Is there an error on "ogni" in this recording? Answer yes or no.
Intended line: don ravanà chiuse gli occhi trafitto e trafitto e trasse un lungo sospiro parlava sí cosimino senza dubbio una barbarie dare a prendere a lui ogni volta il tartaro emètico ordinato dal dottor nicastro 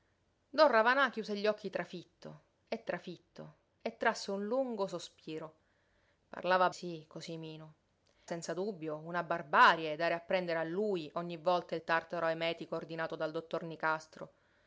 no